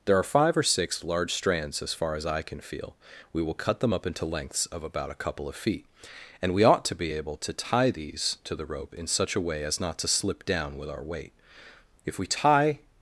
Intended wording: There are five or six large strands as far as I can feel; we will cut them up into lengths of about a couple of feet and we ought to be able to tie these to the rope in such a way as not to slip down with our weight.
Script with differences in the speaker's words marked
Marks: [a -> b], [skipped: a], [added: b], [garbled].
There are five or six large strands as far as I can feel; we will cut them up into lengths of about a couple of feet and we ought to be able to tie these to the rope in such a way as not to slip down with our weight. [added: If we tie]